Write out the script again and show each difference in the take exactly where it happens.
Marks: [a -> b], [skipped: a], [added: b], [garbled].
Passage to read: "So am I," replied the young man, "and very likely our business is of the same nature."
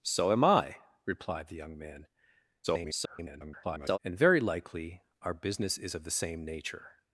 "So am I," replied the young man, [garbled] "and very likely our business is of the same nature."